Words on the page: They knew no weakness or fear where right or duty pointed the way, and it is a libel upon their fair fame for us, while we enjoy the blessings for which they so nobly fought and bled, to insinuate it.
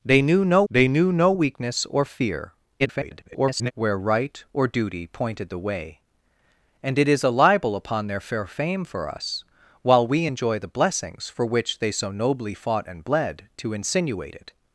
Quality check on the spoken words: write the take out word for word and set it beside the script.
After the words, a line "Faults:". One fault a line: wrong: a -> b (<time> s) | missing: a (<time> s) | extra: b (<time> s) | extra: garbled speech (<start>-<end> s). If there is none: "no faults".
They knew no they knew no weakness or fear [garbled] where right or duty pointed the way, and it is a libel upon their fair fame for us, while we enjoy the blessings for which they so nobly fought and bled, to insinuate it.
Faults:
extra: they knew no (0.7 s)
extra: garbled speech (2.8-3.7 s)